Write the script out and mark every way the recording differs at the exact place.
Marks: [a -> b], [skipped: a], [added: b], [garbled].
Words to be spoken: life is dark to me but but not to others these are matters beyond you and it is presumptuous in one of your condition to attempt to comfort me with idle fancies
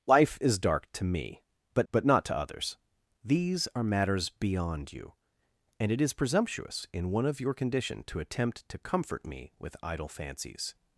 life is dark to me but but not to others these are matters beyond you and it is presumptuous in one of your condition to attempt to comfort me with idle fancies